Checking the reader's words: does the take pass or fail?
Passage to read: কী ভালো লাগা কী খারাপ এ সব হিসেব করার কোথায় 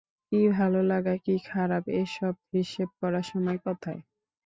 fail